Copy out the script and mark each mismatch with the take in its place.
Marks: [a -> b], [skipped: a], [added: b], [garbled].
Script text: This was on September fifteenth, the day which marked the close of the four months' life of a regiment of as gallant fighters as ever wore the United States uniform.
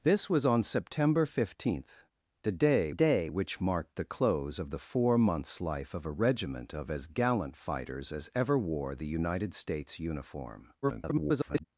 This was on September fifteenth, the day [added: day] which marked the close of the four months' life of a regiment of as gallant fighters as ever wore the United States uniform. [garbled]